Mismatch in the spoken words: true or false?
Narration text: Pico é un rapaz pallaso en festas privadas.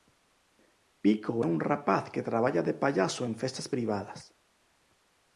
true